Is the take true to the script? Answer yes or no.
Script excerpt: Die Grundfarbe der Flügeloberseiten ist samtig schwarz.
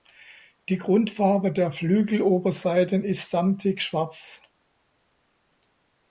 yes